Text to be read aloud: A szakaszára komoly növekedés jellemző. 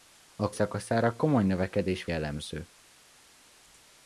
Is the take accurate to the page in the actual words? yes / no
yes